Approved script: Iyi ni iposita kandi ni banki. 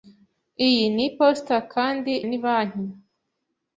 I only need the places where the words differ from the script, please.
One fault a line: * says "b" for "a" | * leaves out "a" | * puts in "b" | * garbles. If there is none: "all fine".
all fine